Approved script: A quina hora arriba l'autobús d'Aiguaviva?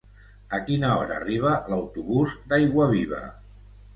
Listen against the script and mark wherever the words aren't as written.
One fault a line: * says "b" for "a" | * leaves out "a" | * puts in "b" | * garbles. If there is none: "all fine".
all fine